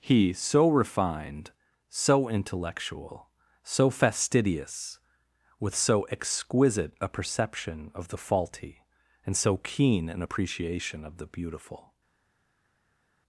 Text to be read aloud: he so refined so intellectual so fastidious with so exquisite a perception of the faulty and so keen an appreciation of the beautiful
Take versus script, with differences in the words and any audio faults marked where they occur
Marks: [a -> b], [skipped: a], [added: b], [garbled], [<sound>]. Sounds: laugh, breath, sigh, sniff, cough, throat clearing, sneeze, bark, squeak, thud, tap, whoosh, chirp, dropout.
he so refined so intellectual so fastidious with so exquisite a perception of the faulty and so keen an appreciation of the beautiful